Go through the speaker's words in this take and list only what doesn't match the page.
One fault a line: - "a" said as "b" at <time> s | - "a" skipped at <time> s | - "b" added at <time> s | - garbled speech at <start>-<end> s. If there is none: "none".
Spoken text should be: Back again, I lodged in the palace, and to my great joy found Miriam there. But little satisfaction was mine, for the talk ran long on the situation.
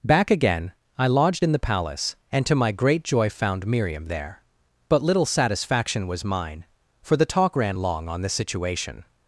none